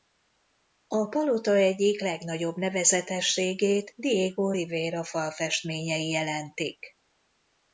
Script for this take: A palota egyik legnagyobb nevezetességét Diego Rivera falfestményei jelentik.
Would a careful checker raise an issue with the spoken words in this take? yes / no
no